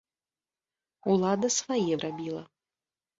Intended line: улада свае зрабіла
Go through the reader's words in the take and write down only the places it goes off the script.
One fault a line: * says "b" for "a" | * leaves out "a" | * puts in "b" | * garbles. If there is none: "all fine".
all fine